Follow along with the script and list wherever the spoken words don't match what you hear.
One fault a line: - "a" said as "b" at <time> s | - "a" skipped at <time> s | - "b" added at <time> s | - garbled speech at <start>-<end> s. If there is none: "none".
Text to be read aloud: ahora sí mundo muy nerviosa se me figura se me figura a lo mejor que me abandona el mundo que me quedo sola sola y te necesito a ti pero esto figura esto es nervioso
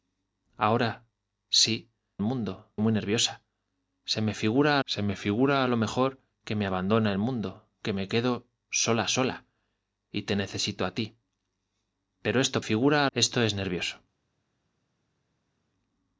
none